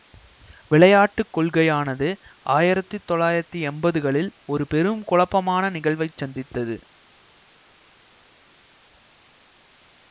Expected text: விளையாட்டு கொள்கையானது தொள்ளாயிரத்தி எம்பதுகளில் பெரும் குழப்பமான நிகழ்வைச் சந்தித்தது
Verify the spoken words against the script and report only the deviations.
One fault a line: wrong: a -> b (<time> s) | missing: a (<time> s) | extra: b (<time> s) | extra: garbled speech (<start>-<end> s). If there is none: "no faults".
extra: ஆயிரத்தி (2.5 s)
extra: ஒரு (4.5 s)